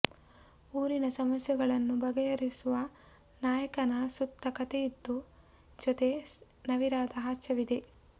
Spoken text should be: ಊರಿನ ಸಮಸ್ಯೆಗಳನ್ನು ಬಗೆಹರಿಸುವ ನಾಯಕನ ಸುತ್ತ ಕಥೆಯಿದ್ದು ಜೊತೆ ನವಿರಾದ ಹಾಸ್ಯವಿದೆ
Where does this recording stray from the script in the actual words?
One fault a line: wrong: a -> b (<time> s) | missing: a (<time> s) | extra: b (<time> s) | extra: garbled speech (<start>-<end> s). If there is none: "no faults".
no faults